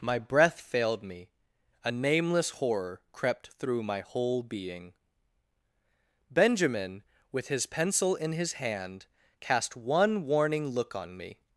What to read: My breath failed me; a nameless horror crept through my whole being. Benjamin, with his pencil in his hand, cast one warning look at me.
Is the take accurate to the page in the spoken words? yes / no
no